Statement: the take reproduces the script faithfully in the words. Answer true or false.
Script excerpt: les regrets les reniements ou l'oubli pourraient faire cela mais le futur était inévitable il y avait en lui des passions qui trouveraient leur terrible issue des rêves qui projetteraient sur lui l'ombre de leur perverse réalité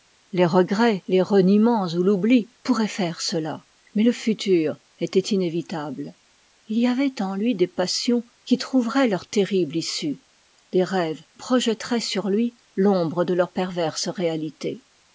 false